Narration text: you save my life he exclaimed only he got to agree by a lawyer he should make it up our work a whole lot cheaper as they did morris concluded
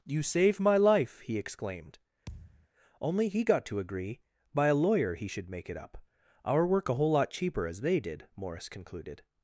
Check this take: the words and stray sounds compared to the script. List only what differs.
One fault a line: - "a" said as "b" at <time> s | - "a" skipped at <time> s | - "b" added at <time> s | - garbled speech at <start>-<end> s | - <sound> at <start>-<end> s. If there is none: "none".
- thud at 2.3-2.7 s